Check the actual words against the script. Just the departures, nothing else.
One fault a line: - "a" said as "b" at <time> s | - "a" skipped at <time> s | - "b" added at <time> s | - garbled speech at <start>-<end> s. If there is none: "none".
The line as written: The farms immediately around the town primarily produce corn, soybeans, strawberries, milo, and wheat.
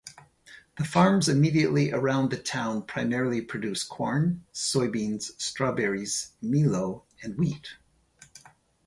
none